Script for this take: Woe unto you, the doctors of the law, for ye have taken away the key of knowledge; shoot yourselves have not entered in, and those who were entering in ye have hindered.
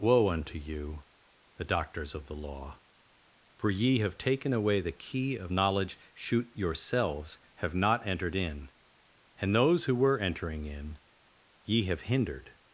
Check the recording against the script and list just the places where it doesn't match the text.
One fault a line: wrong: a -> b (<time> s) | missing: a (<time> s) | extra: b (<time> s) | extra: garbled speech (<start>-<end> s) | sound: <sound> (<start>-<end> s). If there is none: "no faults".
no faults